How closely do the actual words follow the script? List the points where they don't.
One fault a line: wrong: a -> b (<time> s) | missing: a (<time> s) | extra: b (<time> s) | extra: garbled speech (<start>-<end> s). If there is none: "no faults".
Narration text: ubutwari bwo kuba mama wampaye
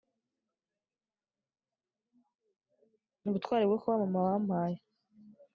no faults